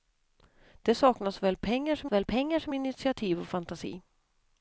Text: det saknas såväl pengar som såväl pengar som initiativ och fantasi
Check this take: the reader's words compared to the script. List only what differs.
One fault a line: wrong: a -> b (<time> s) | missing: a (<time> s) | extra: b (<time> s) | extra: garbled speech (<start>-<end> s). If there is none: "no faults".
no faults